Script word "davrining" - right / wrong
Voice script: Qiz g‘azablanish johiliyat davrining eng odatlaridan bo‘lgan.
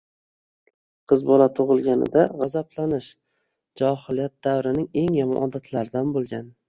right